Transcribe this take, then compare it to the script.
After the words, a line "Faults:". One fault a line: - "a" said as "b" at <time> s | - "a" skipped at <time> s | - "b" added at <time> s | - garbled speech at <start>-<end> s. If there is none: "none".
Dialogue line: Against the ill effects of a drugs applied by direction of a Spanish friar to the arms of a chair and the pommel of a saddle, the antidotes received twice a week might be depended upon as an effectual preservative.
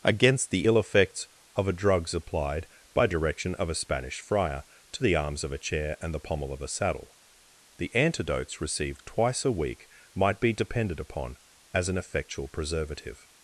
Against the ill effects of a drugs applied by direction of a Spanish friar to the arms of a chair and the pommel of a saddle, the antidotes received twice a week might be depended upon as an effectual preservative.
Faults:
none